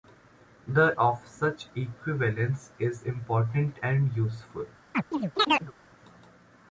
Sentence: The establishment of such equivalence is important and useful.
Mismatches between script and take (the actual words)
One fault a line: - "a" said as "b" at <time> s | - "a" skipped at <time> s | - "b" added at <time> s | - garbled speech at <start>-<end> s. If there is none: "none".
- "establishment" skipped at 0.9 s